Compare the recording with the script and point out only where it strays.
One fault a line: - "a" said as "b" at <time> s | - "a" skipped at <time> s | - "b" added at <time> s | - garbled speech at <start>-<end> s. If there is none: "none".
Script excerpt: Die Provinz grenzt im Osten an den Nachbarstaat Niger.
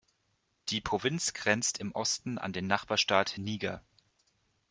none